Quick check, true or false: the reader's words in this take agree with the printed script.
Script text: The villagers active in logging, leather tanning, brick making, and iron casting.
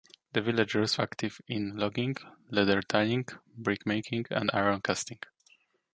true